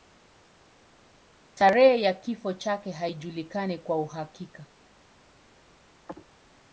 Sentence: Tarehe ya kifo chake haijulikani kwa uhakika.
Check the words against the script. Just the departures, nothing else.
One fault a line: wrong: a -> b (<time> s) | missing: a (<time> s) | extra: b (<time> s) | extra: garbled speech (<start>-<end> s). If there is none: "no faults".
no faults